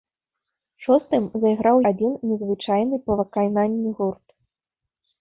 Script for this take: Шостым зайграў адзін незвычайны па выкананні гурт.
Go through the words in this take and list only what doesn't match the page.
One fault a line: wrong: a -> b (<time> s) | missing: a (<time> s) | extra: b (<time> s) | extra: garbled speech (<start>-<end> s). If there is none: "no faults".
no faults